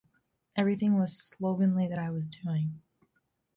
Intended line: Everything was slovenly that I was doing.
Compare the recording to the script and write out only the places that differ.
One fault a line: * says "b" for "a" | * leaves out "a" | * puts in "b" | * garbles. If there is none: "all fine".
all fine